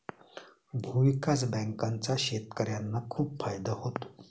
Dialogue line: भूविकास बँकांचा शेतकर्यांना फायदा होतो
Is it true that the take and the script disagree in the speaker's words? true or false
true